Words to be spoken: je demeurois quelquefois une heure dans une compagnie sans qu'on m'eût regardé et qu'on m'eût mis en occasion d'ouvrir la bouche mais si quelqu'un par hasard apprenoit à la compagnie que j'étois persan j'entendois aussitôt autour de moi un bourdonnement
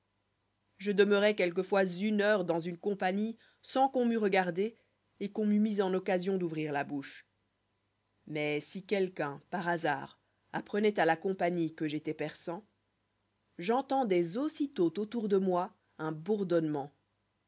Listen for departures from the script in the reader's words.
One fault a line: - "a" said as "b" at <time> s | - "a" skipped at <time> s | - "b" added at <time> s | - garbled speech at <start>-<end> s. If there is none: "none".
none